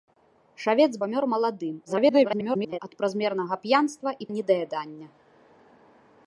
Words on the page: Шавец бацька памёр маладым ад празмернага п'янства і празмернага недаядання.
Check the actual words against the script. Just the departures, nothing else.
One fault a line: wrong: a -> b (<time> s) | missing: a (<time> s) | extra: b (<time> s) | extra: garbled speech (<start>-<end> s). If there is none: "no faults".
missing: бацька (0.9 s)
extra: garbled speech (1.9-2.8 s)
missing: празмернага (4.3 s)